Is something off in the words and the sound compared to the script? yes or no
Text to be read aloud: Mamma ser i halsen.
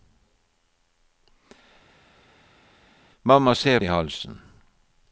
no